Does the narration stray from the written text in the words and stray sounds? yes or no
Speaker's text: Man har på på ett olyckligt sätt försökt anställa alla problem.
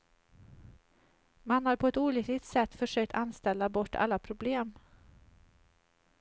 yes